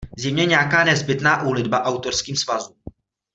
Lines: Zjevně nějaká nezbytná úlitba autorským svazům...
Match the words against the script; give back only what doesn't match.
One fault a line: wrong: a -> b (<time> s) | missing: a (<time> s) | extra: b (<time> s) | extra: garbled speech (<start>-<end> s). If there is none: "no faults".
no faults